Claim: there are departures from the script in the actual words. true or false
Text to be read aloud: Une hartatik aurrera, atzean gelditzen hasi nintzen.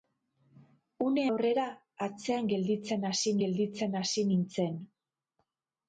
true